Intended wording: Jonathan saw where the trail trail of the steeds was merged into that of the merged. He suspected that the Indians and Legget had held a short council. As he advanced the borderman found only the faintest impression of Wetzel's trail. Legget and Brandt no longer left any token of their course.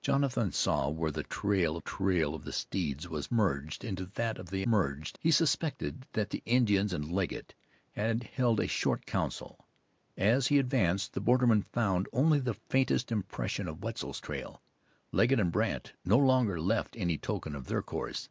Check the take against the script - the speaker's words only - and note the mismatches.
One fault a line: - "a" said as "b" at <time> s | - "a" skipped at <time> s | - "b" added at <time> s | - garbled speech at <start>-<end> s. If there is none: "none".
none